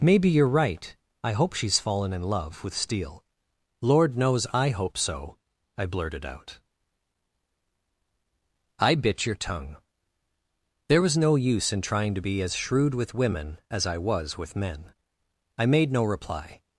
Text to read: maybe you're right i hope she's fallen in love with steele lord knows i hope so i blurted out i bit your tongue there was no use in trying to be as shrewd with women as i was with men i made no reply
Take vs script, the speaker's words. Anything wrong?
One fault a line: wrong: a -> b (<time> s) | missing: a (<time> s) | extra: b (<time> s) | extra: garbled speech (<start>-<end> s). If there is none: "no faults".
no faults